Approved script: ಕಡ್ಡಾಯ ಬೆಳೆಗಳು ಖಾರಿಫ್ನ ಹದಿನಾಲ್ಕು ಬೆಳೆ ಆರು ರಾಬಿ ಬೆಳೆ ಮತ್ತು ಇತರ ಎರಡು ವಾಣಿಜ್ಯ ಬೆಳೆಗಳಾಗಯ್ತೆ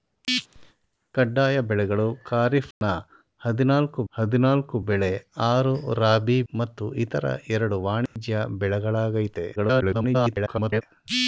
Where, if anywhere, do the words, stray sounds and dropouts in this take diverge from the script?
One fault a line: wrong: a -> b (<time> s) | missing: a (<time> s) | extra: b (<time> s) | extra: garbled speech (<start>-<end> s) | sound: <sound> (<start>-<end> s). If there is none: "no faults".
sound: dropout (2.7-2.8 s)
extra: ಹದಿನಾಲ್ಕು (4.1 s)
missing: ಬೆಳೆ (6.4 s)
sound: dropout (8.1-8.2 s)
extra: garbled speech (9.6-10.8 s)